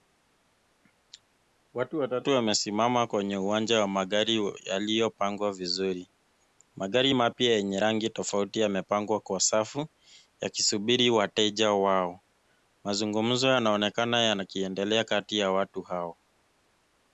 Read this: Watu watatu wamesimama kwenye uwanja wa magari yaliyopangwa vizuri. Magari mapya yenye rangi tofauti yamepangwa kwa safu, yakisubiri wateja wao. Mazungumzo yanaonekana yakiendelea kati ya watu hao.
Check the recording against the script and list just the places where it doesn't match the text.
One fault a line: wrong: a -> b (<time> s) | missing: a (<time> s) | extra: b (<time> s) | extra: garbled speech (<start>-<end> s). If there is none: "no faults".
no faults